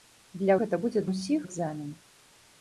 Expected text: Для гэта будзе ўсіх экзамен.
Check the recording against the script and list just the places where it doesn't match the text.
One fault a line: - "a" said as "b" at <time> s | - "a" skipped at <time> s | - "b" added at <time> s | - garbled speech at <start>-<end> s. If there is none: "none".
none